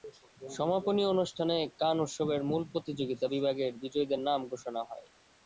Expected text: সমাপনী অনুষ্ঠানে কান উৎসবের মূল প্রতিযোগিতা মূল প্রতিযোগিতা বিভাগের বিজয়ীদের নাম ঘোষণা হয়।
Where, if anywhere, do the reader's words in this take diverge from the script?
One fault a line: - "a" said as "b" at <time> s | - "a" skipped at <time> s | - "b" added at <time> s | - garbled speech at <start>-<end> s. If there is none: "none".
- "মূল প্রতিযোগিতা" skipped at 3.2 s